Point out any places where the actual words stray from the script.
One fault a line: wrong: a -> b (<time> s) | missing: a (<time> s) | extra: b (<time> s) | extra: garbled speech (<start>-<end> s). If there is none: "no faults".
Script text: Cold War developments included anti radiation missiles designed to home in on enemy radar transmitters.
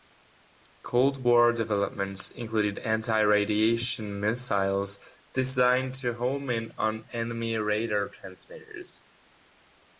no faults